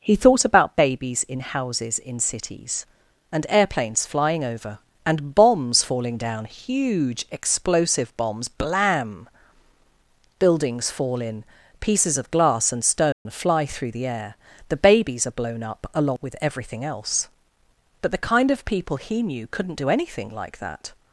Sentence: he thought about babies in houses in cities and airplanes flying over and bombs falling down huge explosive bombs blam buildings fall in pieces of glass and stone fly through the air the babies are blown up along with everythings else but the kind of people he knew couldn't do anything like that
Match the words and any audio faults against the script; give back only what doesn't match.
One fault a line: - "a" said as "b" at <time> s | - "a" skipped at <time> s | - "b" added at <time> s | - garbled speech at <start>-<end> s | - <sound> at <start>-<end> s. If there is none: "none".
- dropout at 13.1-13.3 s
- "everythings" said as "everything" at 16.4 s